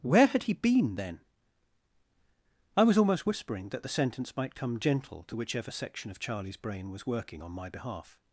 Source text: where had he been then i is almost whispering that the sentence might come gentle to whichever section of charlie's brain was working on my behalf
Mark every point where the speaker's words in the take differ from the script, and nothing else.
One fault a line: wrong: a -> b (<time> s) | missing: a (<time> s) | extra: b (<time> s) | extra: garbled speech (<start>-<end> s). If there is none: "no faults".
wrong: is -> was (2.8 s)